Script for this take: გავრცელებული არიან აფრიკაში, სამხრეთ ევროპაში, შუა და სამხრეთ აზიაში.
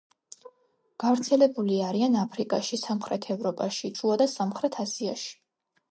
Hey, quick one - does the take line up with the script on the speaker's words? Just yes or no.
yes